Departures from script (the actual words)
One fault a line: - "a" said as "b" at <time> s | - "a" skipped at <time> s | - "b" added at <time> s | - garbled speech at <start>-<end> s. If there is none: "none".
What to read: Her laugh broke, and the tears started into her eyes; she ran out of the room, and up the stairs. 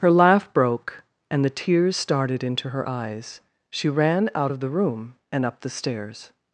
none